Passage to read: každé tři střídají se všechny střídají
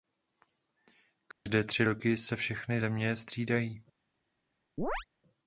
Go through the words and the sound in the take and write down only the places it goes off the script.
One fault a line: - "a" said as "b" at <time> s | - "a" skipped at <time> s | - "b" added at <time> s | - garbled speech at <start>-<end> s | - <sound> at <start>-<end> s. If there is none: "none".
- dropout at 1.3-1.5 s
- "střídají" said as "roky" at 1.8 s
- "země" added at 2.8 s
- chirp at 4.8-5.1 s